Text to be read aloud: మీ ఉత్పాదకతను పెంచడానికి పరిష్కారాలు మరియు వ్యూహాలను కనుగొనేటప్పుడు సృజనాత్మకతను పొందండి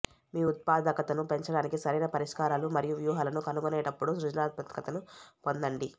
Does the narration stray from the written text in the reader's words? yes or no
yes